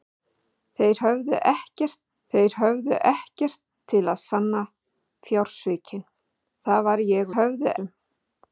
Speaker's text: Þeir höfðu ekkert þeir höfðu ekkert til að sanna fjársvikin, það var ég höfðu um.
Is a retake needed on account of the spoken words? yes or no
no